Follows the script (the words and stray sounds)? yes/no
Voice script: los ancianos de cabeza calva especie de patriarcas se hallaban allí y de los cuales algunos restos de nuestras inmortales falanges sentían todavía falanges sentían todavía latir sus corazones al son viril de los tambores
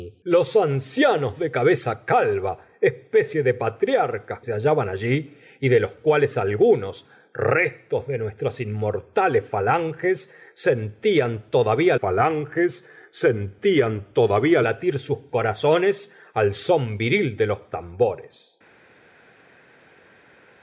yes